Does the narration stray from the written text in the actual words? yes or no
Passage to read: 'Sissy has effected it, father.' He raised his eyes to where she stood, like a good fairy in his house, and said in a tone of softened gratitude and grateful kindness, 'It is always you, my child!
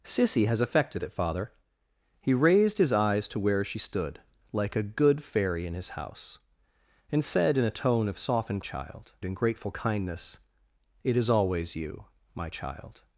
yes